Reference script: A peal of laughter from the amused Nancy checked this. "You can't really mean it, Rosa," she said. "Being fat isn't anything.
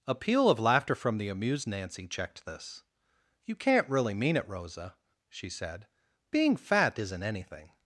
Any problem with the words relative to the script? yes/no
no